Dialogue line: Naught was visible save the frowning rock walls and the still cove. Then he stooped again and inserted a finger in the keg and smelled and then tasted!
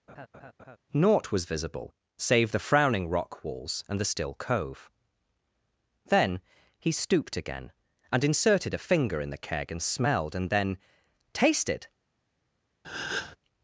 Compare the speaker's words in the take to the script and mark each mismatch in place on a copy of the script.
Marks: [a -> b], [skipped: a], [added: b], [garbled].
Naught was visible save the frowning rock walls and the still cove. Then he stooped again and inserted a finger in the keg and smelled and then tasted!